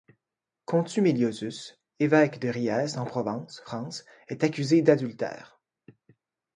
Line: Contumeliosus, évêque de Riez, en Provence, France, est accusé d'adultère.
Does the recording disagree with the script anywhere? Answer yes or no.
no